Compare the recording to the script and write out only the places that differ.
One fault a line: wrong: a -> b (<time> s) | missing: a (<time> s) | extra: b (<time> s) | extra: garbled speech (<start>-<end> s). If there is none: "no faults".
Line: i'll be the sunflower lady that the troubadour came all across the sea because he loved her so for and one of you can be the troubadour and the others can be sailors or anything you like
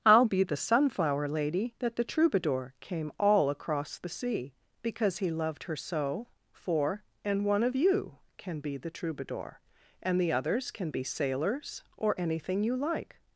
no faults